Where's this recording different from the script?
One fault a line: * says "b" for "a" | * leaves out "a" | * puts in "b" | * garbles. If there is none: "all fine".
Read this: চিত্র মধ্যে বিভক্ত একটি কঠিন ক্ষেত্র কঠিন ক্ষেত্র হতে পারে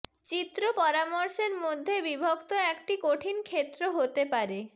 * puts in "পরামর্শের"
* leaves out "কঠিন ক্ষেত্র"